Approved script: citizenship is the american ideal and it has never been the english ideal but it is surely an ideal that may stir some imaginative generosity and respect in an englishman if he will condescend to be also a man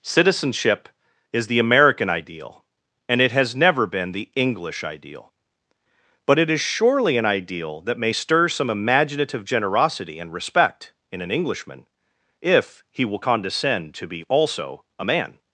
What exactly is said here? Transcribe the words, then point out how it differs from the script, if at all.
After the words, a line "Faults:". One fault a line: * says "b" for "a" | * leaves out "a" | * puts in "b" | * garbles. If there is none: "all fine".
citizenship is the american ideal and it has never been the english ideal but it is surely an ideal that may stir some imaginative generosity and respect in an englishman if he will condescend to be also a man
Faults:
all fine